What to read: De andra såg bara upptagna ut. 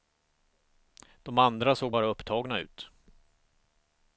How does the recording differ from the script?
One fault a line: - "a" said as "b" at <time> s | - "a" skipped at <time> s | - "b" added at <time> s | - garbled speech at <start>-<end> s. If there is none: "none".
none